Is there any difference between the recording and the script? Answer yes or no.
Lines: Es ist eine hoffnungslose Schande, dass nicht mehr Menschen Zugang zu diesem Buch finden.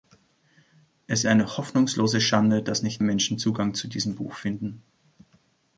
yes